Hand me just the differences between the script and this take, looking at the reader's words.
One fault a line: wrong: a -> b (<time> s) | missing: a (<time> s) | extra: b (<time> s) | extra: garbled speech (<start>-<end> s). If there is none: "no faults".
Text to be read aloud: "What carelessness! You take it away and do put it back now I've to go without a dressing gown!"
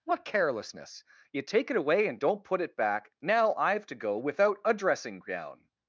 wrong: do -> don't (2.2 s)